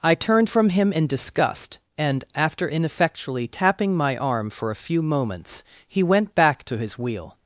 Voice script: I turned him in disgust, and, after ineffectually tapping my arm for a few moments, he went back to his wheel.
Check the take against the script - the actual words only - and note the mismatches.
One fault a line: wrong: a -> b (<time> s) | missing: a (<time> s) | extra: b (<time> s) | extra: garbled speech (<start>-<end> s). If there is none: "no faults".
extra: from (0.5 s)